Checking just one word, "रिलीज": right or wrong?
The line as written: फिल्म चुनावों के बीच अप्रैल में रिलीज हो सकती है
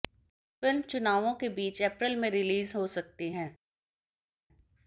right